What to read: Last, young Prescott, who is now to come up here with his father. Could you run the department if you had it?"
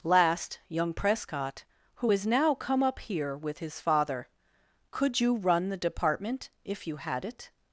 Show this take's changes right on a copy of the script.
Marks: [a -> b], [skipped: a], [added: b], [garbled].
Last, young Prescott, who is now [skipped: to] come up here with his father. Could you run the department if you had it?"